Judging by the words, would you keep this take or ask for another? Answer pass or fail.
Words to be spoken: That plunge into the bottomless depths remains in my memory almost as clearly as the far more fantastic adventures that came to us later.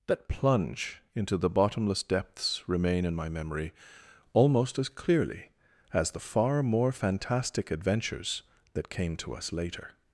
fail